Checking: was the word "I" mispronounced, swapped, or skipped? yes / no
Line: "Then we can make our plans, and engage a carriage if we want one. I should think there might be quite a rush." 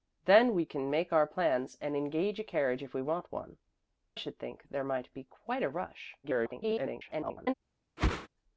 yes